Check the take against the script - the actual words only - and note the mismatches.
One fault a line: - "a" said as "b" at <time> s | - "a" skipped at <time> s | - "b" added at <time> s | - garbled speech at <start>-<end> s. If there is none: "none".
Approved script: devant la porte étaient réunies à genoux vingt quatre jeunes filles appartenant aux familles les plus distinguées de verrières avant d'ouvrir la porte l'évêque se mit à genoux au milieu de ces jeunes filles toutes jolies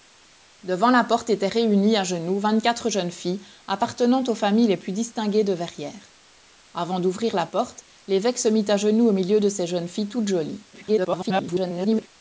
- garbled speech at 10.7-12.1 s